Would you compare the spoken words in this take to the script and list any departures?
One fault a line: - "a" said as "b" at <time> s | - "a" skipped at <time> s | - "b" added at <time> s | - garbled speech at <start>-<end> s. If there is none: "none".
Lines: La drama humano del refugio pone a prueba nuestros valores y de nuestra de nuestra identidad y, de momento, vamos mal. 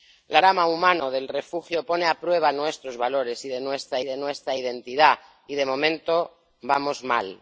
none